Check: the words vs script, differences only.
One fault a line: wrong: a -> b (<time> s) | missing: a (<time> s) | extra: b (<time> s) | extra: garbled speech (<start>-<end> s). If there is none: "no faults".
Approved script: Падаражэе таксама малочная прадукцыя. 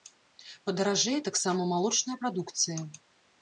no faults